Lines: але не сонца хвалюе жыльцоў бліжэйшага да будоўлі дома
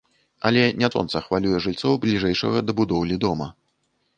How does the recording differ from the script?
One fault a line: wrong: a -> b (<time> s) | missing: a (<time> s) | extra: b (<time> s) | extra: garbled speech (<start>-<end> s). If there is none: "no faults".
no faults